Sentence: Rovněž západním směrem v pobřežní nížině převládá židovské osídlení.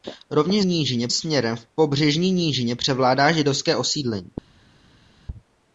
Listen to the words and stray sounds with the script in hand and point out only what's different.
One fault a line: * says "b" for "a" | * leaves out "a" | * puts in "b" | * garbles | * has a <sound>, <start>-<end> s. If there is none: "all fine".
* says "nížině" for "západním"